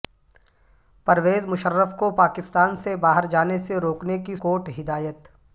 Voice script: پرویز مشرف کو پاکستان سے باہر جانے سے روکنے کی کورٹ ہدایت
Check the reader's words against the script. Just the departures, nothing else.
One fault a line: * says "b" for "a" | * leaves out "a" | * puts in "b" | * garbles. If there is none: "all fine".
all fine